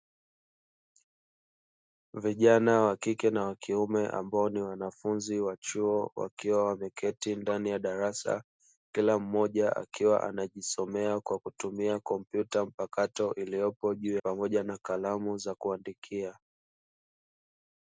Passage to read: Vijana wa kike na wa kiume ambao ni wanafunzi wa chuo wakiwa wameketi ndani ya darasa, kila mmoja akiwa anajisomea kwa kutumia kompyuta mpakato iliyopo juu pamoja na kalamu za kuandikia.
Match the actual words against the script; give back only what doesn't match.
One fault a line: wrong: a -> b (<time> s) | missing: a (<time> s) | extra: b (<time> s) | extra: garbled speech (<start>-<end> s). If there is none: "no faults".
no faults